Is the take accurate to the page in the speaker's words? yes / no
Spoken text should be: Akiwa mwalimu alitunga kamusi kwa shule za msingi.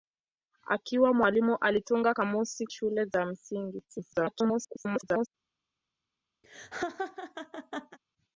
no